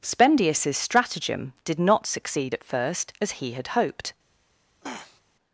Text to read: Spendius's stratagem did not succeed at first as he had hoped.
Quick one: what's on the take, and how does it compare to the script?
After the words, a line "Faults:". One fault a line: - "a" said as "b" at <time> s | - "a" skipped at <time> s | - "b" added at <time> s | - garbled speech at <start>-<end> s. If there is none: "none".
Spendius's stratagem did not succeed at first as he had hoped.
Faults:
none